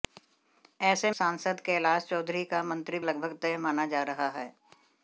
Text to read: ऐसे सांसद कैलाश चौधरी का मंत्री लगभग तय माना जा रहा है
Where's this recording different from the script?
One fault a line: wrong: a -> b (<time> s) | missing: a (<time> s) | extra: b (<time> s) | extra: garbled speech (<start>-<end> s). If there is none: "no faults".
no faults